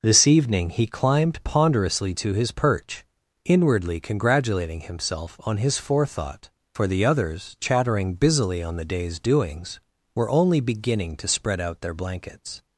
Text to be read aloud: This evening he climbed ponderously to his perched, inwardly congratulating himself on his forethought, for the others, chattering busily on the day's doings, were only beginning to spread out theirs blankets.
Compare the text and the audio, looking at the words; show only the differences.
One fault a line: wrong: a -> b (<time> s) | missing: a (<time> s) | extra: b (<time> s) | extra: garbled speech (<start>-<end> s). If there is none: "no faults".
wrong: perched -> perch (2.5 s)
wrong: theirs -> their (11.8 s)